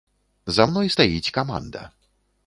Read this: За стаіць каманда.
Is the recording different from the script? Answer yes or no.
yes